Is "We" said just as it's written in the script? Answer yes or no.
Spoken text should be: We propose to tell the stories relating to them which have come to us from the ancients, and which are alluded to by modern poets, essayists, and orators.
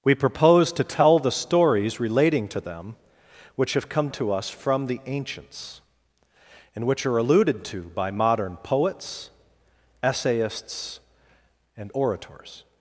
yes